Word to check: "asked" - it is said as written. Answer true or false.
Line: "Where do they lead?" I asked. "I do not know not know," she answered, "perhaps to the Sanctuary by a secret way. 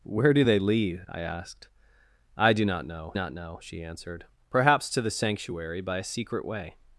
true